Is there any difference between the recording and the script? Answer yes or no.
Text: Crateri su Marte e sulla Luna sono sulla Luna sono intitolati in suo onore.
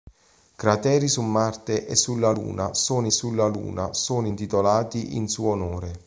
no